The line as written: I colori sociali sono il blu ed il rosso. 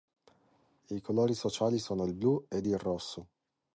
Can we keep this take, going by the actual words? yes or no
yes